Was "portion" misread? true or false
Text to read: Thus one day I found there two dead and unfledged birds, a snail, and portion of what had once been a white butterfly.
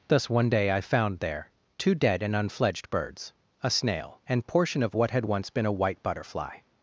false